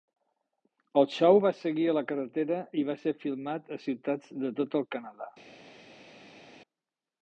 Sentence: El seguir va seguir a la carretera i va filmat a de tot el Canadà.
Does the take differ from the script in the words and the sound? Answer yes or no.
yes